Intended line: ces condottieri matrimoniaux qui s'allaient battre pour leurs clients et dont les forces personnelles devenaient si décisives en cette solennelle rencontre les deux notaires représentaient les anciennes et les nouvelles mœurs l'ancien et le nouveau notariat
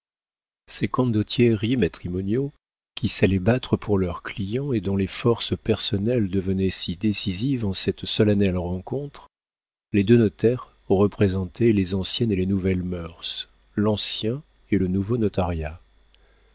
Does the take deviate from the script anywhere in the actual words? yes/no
no